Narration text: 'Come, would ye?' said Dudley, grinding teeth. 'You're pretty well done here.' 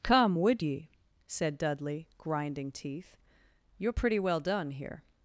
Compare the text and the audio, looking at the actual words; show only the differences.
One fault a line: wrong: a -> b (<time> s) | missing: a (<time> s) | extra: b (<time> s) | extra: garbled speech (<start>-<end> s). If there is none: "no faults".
no faults